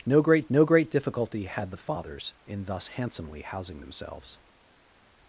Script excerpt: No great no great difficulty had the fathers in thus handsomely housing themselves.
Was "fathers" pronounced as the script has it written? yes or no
yes